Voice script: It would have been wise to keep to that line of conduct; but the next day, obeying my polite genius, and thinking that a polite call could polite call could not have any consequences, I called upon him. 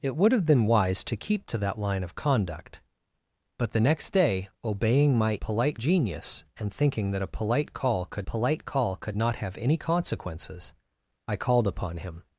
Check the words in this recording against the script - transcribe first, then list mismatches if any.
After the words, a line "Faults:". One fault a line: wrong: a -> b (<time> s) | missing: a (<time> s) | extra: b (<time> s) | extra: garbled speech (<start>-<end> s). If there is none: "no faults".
It would have been wise to keep to that line of conduct; but the next day, obeying my polite genius, and thinking that a polite call could polite call could not have any consequences, I called upon him.
Faults:
no faults